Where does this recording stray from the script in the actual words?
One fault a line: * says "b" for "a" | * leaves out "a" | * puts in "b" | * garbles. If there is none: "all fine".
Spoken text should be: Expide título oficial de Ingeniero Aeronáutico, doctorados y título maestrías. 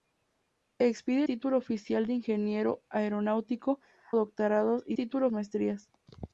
all fine